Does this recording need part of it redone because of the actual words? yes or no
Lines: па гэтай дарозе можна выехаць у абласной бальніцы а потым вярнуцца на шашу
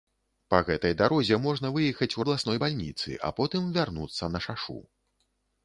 no